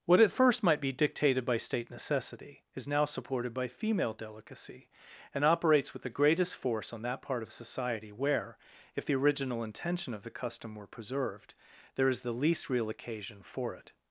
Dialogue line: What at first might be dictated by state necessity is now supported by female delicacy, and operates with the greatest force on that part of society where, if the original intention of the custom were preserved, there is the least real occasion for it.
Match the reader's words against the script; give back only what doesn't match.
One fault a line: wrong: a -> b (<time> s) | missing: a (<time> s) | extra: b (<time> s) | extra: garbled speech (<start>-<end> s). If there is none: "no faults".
no faults